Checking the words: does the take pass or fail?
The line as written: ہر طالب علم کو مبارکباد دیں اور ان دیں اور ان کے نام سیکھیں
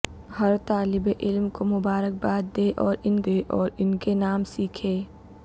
pass